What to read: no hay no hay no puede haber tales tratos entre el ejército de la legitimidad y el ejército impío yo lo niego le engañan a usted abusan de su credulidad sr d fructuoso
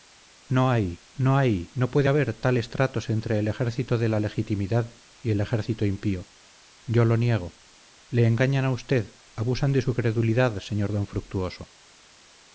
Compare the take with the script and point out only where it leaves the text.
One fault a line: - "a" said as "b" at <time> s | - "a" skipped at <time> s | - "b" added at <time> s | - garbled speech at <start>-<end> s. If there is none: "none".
none